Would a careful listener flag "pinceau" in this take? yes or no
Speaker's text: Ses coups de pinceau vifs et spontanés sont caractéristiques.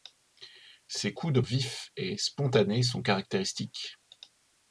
yes